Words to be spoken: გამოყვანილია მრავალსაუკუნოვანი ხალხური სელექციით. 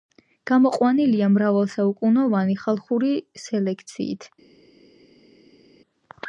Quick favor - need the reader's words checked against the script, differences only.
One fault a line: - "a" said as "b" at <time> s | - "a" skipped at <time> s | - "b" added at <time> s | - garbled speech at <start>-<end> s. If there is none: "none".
none